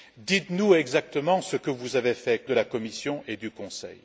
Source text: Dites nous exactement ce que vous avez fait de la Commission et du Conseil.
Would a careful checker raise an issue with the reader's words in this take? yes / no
no